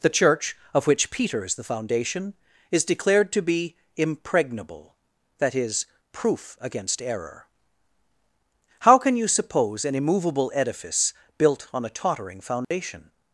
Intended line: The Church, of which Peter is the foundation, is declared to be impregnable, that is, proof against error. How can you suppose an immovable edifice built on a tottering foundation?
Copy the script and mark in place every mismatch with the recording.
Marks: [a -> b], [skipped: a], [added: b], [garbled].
The Church, of which Peter is the foundation, is declared to be impregnable, that is, proof against error. How can you suppose an immovable edifice built on a tottering foundation?